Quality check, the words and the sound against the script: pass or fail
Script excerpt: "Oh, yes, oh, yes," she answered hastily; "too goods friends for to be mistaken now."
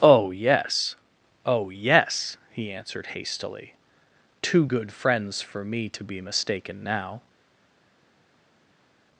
fail